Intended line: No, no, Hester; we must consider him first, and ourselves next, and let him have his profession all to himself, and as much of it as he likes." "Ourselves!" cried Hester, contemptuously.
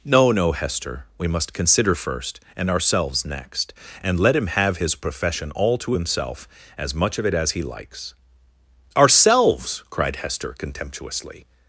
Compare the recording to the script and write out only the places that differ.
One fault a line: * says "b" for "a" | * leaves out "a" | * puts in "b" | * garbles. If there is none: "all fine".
* leaves out "him"
* leaves out "and"